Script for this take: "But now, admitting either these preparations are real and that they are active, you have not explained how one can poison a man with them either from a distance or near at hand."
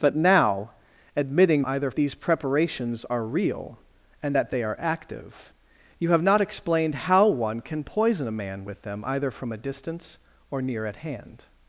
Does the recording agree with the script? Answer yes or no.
yes